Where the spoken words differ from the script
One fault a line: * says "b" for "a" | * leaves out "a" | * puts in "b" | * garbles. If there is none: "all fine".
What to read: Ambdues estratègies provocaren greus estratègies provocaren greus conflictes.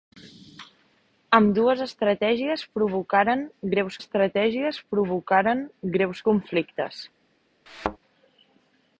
all fine